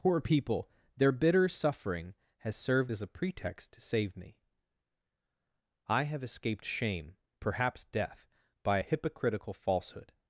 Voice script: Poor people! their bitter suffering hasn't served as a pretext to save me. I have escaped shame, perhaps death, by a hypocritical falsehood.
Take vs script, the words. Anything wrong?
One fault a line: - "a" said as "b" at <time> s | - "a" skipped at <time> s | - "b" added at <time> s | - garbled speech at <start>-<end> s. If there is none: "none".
- "hasn't" said as "has" at 2.4 s